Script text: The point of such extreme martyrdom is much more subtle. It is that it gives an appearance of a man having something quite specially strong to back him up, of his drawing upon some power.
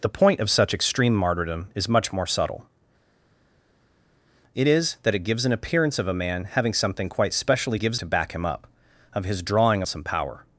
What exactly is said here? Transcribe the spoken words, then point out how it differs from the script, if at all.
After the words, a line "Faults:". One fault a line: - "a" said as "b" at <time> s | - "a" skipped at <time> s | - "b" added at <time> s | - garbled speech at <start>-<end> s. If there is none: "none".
The point of such extreme martyrdom is much more subtle. It is that it gives an appearance of a man having something quite specially gives to back him up, of his drawing some power.
Faults:
- "strong" said as "gives" at 7.7 s
- "upon" skipped at 9.8 s